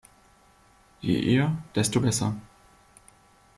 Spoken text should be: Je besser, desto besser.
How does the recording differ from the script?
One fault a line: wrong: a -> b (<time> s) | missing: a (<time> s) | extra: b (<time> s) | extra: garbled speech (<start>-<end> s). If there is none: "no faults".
wrong: besser -> eher (1.1 s)